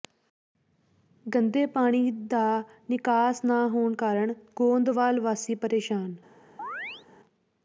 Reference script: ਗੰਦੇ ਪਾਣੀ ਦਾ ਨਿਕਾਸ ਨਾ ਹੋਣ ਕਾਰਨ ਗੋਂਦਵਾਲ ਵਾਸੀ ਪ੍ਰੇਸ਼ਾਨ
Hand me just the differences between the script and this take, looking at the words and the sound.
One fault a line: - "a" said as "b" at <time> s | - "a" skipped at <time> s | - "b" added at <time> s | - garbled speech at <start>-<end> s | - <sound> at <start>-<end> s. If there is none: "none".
- chirp at 6.6-7.0 s